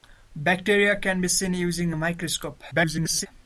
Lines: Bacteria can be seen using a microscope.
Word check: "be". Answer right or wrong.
right